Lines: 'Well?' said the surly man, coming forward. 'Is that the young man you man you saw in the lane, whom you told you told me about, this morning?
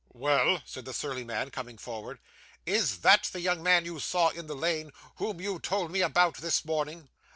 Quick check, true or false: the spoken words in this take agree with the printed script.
false